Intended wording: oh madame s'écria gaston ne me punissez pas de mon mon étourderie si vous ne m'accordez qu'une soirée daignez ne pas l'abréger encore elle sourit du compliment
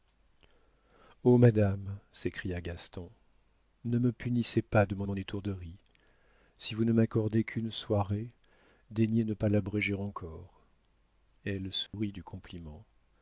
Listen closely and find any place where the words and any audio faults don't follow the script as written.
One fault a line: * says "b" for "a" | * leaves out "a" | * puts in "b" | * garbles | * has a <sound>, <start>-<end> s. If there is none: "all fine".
* has a dropout, 11.9-11.9 s